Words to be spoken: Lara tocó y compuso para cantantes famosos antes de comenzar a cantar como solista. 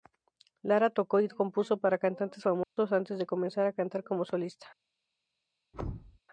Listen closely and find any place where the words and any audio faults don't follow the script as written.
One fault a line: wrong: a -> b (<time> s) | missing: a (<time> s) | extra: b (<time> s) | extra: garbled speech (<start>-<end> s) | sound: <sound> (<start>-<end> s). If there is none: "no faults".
sound: dropout (2.6-2.8 s)
sound: thud (5.7-6.2 s)